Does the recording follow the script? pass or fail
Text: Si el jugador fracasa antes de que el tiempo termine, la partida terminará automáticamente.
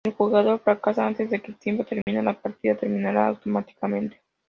pass